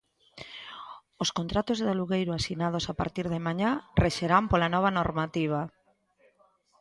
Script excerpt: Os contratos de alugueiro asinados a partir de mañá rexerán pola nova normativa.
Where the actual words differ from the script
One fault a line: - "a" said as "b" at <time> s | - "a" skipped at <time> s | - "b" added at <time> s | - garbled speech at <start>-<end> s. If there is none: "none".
none